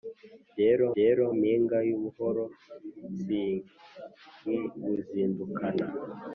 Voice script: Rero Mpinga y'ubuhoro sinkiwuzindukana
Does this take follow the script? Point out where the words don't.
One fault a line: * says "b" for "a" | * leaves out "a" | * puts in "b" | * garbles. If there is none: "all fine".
* puts in "rero"